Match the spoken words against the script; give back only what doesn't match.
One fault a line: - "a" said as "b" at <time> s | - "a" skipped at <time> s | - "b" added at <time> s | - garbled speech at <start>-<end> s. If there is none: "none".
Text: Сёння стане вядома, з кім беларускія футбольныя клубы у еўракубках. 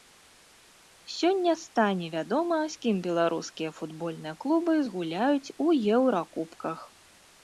- "згуляюць" added at 4.9 s